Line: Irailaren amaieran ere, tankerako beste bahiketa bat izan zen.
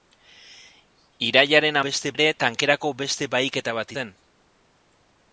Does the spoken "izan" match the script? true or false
false